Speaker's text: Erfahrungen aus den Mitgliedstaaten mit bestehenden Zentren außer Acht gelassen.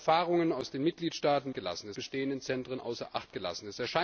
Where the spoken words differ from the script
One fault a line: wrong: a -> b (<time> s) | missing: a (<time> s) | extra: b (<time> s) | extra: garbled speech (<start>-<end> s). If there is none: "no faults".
wrong: mit -> gelassen (1.5 s)